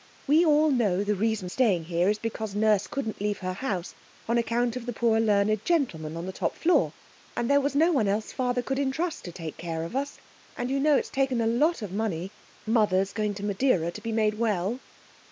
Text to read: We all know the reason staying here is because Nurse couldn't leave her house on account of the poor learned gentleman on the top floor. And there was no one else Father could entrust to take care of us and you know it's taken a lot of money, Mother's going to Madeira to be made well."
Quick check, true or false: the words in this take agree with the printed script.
true